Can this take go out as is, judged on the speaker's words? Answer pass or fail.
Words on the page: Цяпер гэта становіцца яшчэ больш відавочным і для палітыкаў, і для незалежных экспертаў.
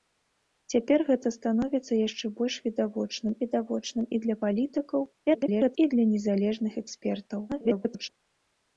fail